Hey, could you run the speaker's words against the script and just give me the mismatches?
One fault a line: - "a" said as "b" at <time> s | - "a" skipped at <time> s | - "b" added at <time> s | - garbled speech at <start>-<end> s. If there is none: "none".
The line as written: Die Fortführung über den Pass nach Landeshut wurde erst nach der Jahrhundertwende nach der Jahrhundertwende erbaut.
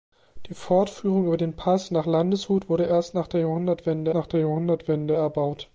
none